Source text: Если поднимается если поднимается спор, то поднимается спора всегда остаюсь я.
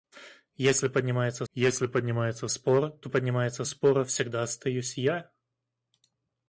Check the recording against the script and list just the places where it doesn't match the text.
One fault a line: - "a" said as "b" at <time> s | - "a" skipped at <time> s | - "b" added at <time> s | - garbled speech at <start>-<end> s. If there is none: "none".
none